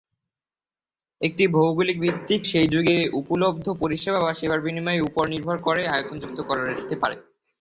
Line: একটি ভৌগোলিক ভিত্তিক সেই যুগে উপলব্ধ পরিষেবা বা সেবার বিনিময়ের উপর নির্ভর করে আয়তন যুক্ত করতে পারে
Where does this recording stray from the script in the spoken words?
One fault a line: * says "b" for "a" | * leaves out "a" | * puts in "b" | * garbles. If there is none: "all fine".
all fine